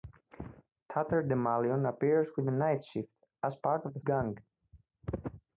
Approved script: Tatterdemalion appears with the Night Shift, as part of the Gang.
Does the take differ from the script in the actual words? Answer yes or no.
no